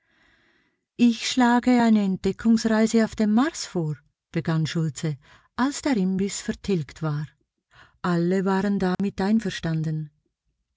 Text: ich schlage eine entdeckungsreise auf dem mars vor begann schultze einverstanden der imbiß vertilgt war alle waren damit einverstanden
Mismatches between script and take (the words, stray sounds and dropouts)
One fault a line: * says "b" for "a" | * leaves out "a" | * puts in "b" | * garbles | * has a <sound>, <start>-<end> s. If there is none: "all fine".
* says "als" for "einverstanden"
* has a dropout, 8.9-9.0 s